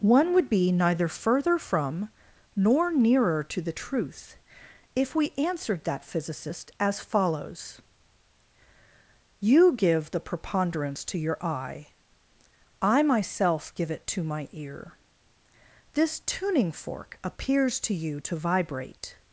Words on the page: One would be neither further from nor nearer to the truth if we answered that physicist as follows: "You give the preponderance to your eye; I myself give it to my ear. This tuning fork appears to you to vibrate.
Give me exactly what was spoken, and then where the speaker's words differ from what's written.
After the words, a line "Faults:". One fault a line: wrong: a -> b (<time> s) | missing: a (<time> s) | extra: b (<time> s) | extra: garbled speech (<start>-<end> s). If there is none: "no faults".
One would be neither further from nor nearer to the truth if we answered that physicist as follows: "You give the preponderance to your eye; I myself give it to my ear. This tuning fork appears to you to vibrate.
Faults:
no faults